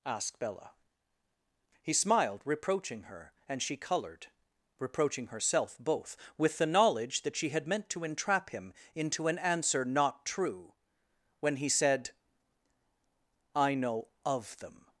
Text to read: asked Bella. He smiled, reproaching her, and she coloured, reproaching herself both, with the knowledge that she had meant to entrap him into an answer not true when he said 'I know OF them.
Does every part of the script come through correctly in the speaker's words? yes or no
yes